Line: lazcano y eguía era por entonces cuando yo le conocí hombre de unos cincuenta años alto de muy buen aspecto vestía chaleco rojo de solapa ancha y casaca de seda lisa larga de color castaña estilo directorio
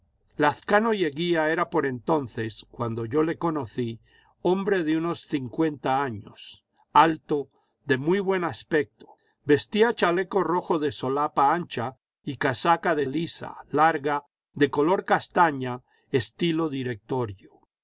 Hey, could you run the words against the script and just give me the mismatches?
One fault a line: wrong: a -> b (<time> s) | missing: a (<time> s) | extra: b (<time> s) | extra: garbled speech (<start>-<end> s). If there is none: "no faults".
missing: seda (13.1 s)